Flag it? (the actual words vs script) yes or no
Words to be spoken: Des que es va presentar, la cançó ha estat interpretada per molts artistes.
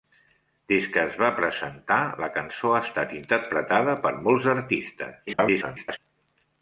yes